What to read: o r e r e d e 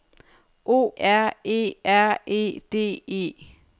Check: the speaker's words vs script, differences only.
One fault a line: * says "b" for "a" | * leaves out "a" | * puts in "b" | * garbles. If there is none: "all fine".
all fine